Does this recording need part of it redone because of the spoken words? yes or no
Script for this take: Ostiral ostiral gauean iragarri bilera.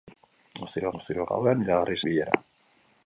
no